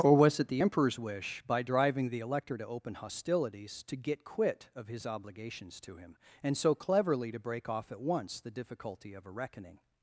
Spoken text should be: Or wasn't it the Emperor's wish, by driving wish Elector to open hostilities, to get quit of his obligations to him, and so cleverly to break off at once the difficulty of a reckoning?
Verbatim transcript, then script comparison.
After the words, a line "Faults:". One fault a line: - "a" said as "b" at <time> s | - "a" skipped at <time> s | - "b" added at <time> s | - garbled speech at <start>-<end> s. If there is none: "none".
Or was it the Emperor's wish, by driving the Elector to open hostilities, to get quit of his obligations to him, and so cleverly to break off at once the difficulty of a reckoning?
Faults:
- "wasn't" said as "was" at 0.1 s
- "wish" said as "the" at 2.1 s